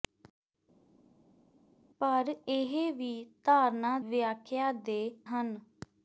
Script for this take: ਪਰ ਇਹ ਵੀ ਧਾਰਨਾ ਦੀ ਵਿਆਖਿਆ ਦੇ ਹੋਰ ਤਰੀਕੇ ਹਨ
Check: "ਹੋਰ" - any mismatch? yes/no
yes